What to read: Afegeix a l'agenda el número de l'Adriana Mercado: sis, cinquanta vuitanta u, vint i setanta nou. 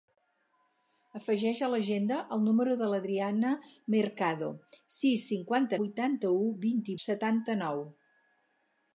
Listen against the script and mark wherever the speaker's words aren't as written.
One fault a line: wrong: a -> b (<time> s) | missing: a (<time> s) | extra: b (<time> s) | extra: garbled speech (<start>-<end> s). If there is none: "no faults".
no faults